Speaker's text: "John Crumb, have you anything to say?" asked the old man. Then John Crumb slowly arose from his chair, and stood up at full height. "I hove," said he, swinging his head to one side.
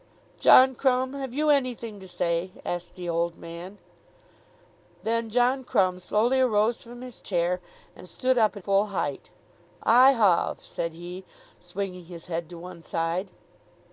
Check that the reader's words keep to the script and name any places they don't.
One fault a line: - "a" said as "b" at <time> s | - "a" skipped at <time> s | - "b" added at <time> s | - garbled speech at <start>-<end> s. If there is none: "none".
none